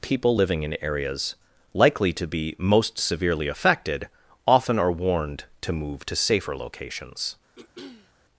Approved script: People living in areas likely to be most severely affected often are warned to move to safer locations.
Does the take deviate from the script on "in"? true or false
false